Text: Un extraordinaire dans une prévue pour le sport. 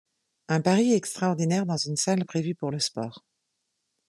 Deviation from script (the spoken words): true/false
true